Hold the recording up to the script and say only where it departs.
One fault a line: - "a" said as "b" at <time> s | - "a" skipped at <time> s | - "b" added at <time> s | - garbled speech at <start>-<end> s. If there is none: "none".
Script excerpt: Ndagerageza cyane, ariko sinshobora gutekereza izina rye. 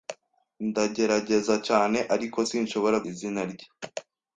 - "gutekereza" skipped at 3.0 s